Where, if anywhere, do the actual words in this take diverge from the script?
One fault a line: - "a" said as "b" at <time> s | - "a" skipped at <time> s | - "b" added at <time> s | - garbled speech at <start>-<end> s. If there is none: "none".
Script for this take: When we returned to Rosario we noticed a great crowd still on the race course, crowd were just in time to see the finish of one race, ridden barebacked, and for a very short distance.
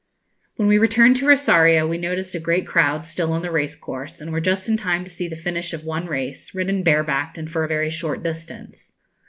- "crowd" said as "and" at 4.2 s